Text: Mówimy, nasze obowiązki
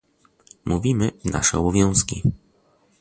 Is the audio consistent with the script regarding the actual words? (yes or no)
yes